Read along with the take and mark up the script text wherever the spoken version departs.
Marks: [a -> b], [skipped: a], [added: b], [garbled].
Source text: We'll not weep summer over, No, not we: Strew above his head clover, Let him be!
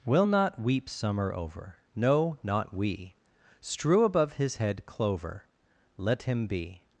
We'll not weep summer over, No, not we: Strew above his head clover, Let him be!